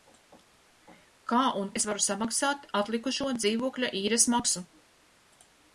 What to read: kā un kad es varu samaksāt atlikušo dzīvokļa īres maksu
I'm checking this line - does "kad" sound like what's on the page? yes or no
no